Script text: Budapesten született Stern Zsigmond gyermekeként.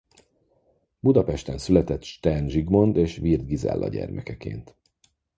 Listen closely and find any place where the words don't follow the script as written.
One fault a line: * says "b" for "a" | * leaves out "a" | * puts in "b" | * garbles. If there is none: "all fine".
* puts in "és Wirth Gizella"